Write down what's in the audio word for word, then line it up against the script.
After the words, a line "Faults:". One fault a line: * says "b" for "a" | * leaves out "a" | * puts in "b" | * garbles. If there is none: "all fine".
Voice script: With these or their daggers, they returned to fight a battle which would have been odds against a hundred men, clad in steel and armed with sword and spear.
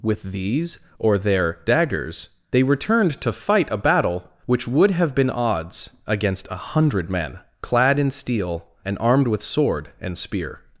With these or their daggers, they returned to fight a battle which would have been odds against a hundred men, clad in steel and armed with sword and spear.
Faults:
all fine